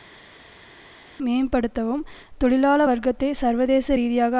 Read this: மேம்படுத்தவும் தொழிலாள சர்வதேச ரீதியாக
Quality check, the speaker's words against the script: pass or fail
fail